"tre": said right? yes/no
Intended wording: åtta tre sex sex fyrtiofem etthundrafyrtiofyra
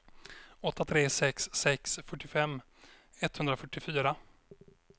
yes